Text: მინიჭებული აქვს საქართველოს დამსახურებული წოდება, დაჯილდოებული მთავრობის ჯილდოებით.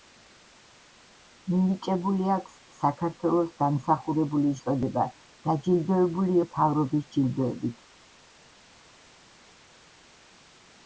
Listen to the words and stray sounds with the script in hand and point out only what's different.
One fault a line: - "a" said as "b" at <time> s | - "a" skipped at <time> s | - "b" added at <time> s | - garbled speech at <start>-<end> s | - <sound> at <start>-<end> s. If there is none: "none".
none